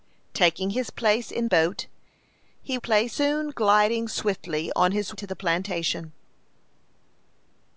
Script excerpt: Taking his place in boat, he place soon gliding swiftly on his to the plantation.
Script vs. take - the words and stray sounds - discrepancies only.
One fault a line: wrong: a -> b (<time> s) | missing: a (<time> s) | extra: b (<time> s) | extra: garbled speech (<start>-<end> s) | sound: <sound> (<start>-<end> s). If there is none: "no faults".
no faults